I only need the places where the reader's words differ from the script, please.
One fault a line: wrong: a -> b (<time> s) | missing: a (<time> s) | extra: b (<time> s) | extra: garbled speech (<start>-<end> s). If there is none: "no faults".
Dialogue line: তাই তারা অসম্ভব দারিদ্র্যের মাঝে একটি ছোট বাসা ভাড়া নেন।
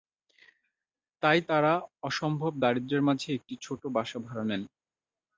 no faults